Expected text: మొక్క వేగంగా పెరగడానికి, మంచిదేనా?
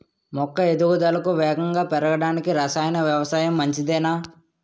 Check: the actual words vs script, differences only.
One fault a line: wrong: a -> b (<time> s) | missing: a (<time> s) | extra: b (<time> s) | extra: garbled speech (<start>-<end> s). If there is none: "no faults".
extra: ఎదుగుదలకు (0.7 s)
extra: రసాయన వ్యవసాయం (2.5 s)